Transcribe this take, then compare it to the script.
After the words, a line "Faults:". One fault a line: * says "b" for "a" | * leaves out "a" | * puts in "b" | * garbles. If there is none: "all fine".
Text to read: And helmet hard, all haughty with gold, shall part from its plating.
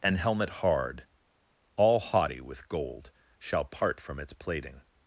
And helmet hard, all haughty with gold, shall part from its plating.
Faults:
all fine